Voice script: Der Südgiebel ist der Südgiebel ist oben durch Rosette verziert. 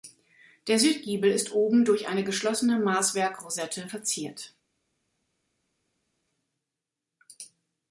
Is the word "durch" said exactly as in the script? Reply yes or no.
no